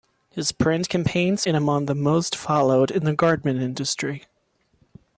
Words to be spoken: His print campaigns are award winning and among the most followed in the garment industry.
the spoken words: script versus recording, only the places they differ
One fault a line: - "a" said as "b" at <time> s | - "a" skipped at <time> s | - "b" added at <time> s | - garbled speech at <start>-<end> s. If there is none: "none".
- "are award winning" skipped at 1.4 s